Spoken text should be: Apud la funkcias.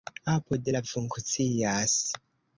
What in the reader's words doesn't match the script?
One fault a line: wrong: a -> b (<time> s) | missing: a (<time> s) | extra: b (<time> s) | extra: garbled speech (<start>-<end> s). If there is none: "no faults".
no faults